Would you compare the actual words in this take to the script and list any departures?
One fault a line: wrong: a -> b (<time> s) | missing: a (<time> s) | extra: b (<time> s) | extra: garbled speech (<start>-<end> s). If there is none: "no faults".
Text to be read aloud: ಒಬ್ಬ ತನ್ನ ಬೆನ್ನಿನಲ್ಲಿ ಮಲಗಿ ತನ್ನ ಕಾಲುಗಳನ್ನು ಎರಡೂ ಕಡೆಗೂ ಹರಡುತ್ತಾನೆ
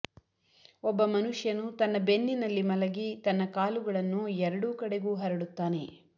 extra: ಮನುಷ್ಯನು (1.1 s)